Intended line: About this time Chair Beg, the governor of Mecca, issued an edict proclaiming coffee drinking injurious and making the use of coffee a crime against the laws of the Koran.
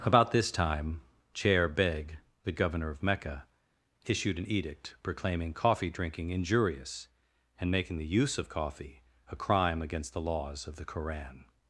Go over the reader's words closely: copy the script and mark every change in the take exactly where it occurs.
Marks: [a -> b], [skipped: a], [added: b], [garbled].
About this time Chair Beg, the governor of Mecca, issued an edict proclaiming coffee drinking injurious and making the use of coffee a crime against the laws of the Koran.